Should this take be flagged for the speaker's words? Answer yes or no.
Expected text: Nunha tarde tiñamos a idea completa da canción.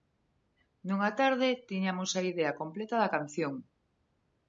no